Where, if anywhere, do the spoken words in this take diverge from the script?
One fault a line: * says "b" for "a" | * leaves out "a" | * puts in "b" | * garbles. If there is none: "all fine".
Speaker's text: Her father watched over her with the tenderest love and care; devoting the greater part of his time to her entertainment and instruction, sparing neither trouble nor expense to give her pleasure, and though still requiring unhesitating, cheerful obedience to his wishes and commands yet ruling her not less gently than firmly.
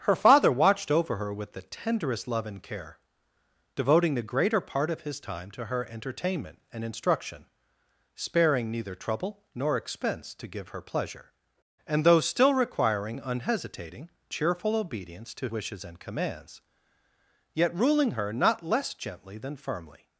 * leaves out "his"